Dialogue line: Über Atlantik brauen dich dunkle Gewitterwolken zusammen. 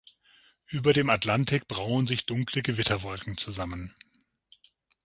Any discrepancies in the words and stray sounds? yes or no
yes